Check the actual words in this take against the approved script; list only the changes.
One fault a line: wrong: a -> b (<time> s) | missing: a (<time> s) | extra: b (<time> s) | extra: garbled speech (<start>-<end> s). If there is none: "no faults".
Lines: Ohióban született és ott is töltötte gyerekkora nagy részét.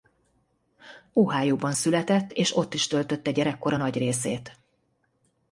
no faults